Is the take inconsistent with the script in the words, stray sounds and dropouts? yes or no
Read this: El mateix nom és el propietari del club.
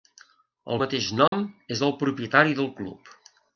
yes